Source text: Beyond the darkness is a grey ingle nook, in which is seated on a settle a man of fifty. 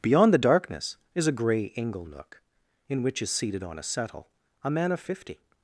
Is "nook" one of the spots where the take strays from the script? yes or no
no